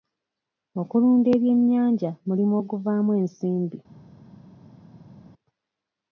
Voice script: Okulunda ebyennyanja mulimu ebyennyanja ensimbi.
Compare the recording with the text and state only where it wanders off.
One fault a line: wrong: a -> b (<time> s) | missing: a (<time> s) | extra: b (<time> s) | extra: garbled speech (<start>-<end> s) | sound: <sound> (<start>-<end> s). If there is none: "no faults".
wrong: ebyennyanja -> oguvaamu (2.6 s)